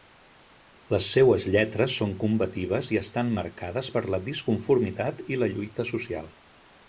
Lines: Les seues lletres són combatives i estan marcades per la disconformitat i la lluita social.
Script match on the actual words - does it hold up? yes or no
yes